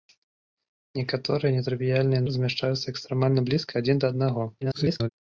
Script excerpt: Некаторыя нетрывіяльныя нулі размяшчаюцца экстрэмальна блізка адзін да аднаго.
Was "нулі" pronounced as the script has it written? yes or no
no